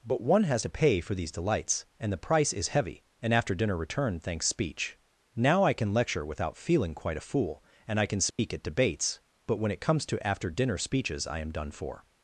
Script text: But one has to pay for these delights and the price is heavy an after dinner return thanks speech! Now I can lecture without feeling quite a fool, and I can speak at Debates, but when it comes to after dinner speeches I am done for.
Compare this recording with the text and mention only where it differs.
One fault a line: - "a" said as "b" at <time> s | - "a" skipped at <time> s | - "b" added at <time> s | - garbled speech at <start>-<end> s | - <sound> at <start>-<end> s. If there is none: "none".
- dropout at 8.3-8.4 s